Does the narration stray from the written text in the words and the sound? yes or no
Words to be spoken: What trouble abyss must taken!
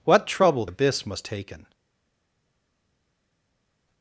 no